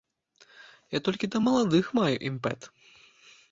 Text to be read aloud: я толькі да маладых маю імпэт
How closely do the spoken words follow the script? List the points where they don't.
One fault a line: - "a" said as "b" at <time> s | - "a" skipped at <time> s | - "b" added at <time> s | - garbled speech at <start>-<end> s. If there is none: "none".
none